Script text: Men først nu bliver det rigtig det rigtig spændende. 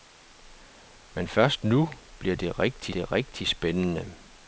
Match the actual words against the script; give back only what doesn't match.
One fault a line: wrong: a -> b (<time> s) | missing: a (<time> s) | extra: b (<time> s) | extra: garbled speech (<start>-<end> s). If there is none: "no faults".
no faults